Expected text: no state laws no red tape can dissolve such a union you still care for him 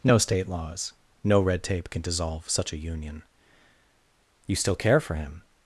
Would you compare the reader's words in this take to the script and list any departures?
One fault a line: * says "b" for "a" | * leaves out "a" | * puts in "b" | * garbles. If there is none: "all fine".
all fine